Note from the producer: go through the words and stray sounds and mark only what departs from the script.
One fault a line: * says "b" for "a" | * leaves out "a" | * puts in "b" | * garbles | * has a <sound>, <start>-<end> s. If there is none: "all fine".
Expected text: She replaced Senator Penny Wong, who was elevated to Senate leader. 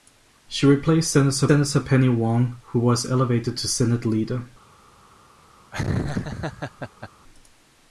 * puts in "Senator"
* has a laugh, 5.7-7.1 s